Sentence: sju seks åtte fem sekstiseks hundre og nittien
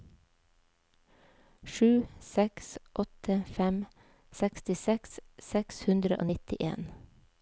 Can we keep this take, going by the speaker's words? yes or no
no